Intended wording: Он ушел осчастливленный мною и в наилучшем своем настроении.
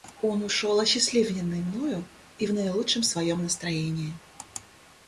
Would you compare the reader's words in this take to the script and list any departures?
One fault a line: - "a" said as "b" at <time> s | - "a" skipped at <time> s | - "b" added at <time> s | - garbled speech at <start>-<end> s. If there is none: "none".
none